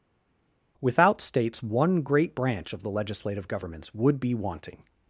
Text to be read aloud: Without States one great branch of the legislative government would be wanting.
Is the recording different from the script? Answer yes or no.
yes